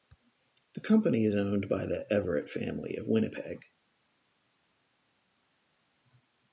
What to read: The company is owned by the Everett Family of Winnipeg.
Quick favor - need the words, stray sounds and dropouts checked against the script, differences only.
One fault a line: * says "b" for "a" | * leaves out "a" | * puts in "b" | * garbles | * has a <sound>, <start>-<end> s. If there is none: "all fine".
all fine